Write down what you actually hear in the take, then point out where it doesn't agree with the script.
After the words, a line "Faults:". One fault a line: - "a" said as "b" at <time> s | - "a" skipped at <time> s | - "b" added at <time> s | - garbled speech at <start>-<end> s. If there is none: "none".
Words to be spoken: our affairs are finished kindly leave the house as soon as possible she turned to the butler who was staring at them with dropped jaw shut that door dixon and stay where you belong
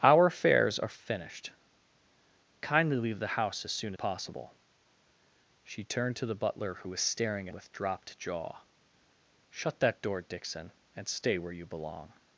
our affairs are finished kindly leave the house as soon possible she turned to the butler who was staring with dropped jaw shut that door dixon and stay where you belong
Faults:
- "as" skipped at 3.9 s
- "at them" skipped at 7.5 s